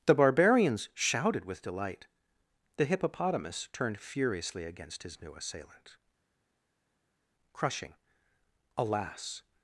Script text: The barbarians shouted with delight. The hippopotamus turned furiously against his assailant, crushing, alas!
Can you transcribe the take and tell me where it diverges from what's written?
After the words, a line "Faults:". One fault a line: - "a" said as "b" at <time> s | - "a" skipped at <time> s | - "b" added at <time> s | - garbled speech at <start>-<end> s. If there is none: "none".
The barbarians shouted with delight. The hippopotamus turned furiously against his new assailant, crushing, alas!
Faults:
- "new" added at 5.2 s